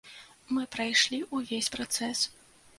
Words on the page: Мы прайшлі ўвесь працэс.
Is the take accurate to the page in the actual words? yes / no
yes